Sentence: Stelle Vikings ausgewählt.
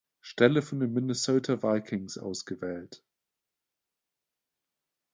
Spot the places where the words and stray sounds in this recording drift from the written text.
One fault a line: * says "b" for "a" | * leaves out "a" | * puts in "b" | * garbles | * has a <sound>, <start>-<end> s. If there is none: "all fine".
* puts in "von den Minnesota"